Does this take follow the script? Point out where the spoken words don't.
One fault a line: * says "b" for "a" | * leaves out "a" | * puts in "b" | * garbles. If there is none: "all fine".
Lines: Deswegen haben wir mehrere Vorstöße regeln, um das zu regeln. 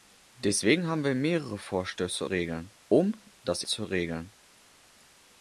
all fine